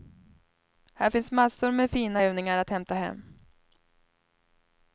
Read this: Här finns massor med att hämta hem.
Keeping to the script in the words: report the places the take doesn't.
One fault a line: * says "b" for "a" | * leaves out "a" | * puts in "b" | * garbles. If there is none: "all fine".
* puts in "fina övningar"